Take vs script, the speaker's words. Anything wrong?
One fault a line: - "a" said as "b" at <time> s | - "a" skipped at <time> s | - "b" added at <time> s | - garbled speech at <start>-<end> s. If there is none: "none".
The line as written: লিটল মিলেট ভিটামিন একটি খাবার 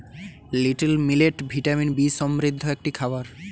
- "বি সমৃদ্ধ" added at 1.9 s